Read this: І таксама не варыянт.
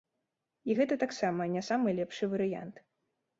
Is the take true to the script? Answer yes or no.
no